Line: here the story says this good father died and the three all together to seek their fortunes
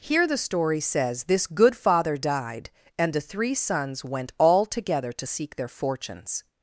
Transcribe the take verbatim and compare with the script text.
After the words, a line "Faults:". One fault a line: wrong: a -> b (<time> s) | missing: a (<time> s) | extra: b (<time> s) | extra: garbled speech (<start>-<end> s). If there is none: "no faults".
here the story says this good father died and the three sons went all together to seek their fortunes
Faults:
extra: sons went (3.5 s)